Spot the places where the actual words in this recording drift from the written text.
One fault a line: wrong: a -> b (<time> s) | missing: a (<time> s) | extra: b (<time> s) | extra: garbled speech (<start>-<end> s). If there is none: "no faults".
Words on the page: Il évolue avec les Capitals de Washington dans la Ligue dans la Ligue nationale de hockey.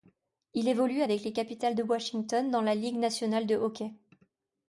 missing: dans la Ligue (3.0 s)